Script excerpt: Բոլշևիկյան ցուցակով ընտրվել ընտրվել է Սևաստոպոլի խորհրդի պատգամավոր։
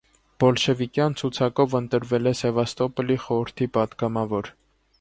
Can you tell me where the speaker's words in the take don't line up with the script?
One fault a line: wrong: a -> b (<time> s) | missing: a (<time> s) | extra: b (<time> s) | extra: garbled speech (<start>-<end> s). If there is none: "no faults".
missing: ընտրվել (2.3 s)